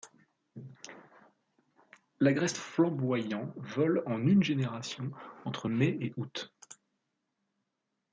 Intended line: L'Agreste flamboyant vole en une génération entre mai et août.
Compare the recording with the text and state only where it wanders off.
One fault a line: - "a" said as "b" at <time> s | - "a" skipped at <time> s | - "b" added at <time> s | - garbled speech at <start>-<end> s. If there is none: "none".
none